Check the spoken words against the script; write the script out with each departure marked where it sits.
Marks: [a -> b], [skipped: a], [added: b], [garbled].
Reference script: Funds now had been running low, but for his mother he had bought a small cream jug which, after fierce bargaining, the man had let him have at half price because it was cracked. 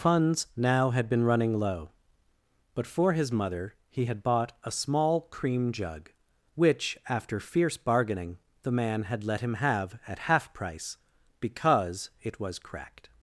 Funds now had been running low, but for his mother he had bought a small cream jug which, after fierce bargaining, the man had let him have at half price because it was cracked.